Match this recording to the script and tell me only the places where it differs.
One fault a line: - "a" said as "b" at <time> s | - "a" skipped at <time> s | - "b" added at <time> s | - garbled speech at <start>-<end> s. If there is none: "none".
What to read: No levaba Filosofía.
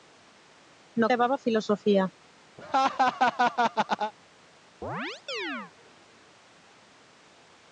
none